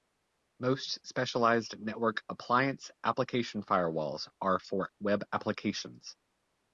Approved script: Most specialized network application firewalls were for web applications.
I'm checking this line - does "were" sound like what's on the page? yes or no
no